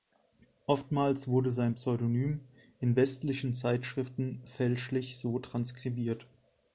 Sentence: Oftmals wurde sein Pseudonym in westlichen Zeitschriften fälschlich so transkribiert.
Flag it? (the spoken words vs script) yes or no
no